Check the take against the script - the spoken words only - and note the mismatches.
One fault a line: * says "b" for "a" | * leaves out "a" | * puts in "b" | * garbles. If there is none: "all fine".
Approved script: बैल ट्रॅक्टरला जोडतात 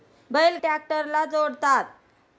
all fine